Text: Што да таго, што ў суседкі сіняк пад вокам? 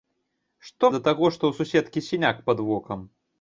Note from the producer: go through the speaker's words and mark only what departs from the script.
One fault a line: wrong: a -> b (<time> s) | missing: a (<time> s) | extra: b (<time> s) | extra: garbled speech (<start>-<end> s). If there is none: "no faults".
no faults